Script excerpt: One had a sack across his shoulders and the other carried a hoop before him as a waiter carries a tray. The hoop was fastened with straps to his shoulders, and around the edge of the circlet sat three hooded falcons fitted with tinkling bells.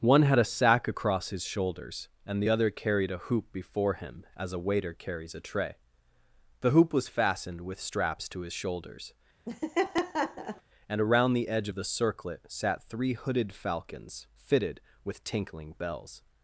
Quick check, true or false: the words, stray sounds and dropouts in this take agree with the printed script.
false